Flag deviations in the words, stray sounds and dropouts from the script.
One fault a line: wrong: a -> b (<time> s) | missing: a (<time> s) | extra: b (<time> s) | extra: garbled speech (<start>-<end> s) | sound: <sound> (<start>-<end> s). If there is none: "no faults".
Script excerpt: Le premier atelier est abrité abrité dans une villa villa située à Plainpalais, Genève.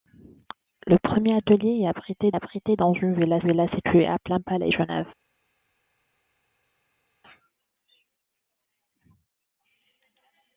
no faults